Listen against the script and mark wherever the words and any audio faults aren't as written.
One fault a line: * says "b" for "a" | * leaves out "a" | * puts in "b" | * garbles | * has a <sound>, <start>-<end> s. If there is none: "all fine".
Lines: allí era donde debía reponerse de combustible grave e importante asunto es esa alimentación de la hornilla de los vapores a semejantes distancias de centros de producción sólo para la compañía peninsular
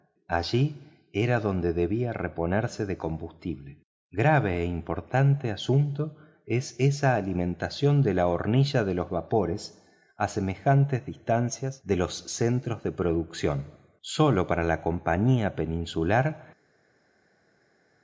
* puts in "los"